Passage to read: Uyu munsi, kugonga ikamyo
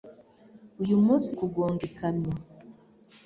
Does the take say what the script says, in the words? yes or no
yes